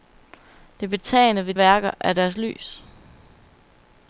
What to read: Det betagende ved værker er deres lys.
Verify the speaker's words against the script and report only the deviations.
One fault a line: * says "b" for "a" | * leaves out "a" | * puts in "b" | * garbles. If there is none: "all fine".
all fine